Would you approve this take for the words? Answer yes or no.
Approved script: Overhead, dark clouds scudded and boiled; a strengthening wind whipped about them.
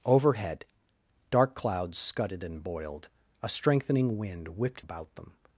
yes